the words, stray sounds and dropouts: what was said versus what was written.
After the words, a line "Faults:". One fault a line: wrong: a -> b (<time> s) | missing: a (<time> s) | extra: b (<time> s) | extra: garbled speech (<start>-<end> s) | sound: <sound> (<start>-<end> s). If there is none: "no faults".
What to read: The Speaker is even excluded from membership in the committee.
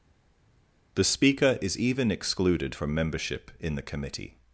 The Speaker is even excluded from membership in the committee.
Faults:
no faults